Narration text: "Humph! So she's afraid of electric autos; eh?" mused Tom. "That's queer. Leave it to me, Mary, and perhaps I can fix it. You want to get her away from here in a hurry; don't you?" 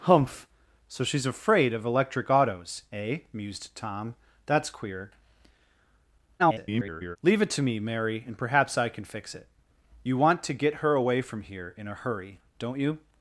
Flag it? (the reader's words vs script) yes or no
yes